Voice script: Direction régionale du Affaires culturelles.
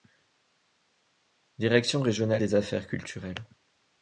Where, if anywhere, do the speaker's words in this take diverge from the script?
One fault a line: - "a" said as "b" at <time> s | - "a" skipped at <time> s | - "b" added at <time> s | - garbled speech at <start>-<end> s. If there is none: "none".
- "du" said as "des" at 2.4 s